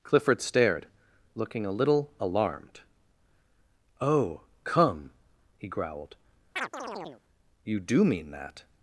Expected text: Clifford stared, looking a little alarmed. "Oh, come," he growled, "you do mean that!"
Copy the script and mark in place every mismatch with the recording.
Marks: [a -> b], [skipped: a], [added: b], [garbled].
Clifford stared, looking a little alarmed. "Oh, come," he growled, "you do mean that!"